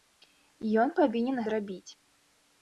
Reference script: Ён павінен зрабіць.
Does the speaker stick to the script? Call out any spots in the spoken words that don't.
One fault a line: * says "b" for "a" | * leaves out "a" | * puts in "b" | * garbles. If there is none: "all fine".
all fine